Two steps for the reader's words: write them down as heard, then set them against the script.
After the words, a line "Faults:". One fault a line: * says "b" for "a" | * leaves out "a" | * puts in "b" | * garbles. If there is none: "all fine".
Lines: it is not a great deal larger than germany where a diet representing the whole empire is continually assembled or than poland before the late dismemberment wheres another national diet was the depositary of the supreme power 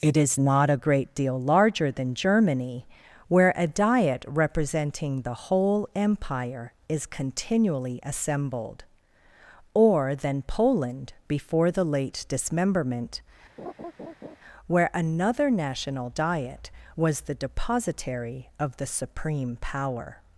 it is not a great deal larger than germany where a diet representing the whole empire is continually assembled or than poland before the late dismemberment where another national diet was the depositary of the supreme power
Faults:
* says "where" for "wheres"